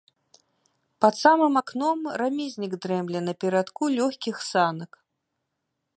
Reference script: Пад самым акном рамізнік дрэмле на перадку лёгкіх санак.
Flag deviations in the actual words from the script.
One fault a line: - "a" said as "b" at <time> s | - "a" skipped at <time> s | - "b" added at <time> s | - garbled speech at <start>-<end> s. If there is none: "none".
none